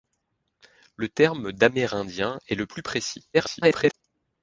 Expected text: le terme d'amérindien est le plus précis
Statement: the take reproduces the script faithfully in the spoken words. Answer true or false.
false